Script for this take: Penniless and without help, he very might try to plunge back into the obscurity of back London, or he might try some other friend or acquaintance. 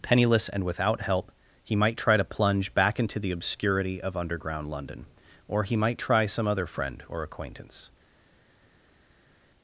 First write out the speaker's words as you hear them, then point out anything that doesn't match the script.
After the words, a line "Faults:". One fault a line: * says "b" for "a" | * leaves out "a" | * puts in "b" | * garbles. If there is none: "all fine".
Penniless and without help, he might try to plunge back into the obscurity of underground London, or he might try some other friend or acquaintance.
Faults:
* leaves out "very"
* says "underground" for "back"